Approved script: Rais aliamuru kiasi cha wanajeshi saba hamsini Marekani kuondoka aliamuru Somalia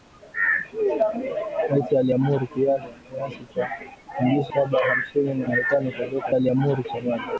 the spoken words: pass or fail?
pass